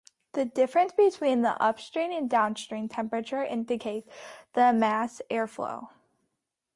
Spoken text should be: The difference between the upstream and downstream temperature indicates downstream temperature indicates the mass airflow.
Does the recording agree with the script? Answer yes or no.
no